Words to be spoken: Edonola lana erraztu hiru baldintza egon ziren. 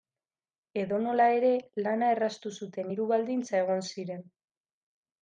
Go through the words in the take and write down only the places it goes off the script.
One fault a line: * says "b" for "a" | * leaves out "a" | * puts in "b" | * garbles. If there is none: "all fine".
* puts in "ere"
* puts in "zuten"